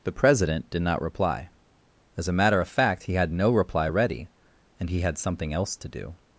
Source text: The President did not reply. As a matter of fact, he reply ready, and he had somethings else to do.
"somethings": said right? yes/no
no